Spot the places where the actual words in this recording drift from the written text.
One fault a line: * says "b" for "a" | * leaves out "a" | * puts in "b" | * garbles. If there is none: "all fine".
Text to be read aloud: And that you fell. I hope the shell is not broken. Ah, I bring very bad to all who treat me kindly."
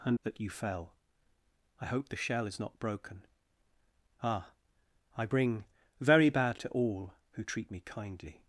all fine